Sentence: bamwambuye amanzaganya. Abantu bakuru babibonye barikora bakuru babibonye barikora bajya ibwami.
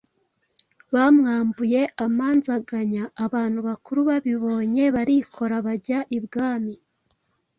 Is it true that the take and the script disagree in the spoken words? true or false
true